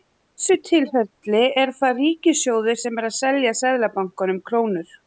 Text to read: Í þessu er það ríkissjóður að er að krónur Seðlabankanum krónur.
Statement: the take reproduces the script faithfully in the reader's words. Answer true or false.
false